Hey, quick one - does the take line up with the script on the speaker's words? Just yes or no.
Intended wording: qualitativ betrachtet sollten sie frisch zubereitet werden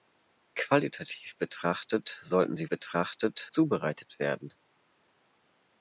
no